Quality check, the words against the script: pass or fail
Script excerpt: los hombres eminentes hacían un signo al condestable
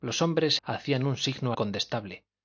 fail